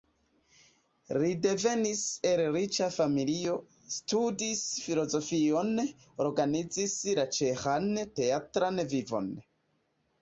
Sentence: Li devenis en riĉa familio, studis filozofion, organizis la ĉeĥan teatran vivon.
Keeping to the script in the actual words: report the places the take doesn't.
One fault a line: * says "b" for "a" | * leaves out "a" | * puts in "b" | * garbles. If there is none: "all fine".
* says "el" for "en"